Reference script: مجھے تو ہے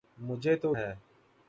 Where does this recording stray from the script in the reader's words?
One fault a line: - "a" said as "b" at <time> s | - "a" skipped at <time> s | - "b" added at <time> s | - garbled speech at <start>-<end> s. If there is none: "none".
none